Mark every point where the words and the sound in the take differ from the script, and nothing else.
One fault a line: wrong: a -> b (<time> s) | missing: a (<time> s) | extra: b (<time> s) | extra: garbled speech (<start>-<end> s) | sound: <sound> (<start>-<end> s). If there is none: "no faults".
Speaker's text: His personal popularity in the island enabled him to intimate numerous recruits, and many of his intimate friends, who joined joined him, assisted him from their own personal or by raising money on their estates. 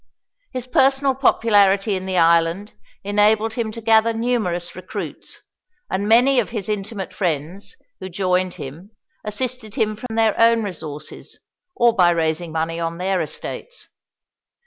wrong: intimate -> gather (3.8 s)
missing: joined (8.5 s)
sound: dropout (10.1-10.1 s)
wrong: personal -> resources (10.6 s)